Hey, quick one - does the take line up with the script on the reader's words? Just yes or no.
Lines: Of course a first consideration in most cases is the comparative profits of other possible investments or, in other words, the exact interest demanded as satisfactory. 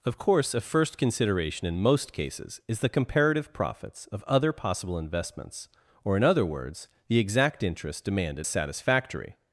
no